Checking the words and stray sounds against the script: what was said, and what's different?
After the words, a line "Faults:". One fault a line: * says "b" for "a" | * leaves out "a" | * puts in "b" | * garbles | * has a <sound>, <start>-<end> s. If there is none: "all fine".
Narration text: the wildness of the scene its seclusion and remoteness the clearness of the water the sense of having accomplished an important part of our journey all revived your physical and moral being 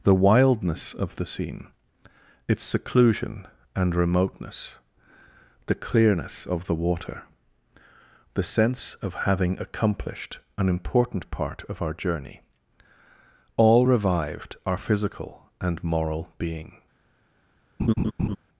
the wildness of the scene its seclusion and remoteness the clearness of the water the sense of having accomplished an important part of our journey all revived our physical and moral being
Faults:
* says "our" for "your"
* has a laugh, 17.8-18.4 s